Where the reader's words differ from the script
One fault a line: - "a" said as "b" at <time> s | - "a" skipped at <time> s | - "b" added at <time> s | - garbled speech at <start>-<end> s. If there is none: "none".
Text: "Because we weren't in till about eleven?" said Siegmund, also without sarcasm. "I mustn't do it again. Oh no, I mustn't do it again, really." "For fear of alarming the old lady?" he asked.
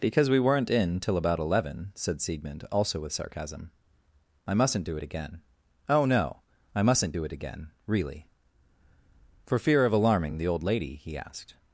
- "without" said as "with" at 3.0 s